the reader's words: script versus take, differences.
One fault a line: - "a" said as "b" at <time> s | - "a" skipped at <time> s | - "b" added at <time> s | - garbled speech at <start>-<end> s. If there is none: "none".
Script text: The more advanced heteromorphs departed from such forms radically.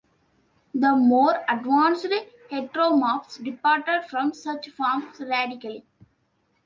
none